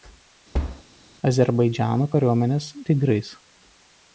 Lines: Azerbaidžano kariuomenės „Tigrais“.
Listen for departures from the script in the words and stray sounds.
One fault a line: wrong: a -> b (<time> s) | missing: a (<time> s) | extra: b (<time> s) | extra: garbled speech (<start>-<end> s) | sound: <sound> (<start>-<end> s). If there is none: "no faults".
sound: thud (0.5-0.8 s)